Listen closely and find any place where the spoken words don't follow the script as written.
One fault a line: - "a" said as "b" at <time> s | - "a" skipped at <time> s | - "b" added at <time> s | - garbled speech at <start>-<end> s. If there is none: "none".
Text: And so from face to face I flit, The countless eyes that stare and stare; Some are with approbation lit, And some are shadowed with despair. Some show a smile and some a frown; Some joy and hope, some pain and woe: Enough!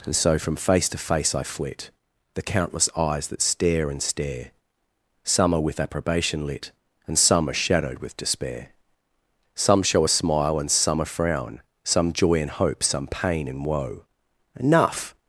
none